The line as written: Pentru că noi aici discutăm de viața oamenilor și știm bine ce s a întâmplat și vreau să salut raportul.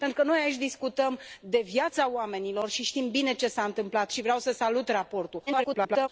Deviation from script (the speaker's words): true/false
true